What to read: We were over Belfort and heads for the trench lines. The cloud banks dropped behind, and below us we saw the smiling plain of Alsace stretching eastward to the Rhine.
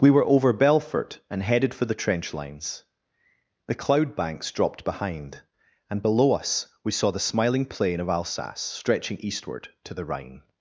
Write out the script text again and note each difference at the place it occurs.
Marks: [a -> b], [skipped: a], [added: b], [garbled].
We were over Belfort and [heads -> headed] for the trench lines. The cloud banks dropped behind, and below us we saw the smiling plain of Alsace stretching eastward to the Rhine.